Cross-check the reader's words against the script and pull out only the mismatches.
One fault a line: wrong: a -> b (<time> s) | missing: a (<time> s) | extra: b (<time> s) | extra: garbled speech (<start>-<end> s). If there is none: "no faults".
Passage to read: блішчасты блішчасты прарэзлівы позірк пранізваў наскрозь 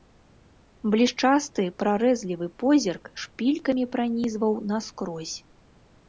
missing: блішчасты (1.6 s)
extra: шпількамі (3.2 s)